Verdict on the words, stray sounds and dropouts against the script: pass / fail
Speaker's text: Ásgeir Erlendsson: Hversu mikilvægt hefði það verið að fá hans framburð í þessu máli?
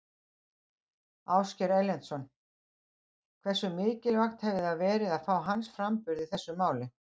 pass